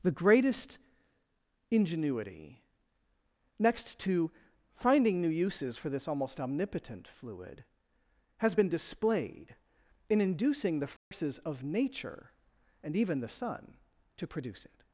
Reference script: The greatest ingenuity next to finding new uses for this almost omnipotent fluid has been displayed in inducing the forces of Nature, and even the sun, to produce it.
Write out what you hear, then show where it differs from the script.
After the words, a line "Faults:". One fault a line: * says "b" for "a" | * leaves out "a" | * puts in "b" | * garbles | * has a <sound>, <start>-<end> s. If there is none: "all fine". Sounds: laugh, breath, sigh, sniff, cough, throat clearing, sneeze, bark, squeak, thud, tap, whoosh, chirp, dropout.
The greatest ingenuity next to finding new uses for this almost omnipotent fluid has been displayed in inducing the forces of Nature, and even the sun, to produce it.
Faults:
* has a dropout, 11.0-11.1 s